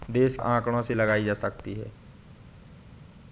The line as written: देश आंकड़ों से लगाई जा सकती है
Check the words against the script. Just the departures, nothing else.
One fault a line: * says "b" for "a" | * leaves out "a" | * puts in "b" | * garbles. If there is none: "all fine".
all fine